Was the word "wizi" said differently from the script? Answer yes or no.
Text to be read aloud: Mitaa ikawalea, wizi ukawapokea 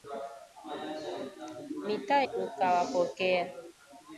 yes